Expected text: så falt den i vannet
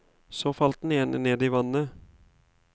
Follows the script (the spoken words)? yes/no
no